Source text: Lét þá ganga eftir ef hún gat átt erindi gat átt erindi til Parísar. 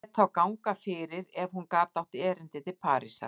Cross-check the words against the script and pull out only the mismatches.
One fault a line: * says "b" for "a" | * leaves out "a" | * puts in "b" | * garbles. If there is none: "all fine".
* says "fyrir" for "eftir"
* leaves out "gat átt erindi"